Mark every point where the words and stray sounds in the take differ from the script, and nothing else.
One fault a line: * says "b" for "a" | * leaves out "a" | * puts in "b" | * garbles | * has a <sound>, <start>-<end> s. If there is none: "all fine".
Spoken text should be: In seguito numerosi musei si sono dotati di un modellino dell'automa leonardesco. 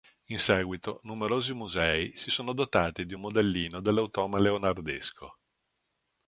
all fine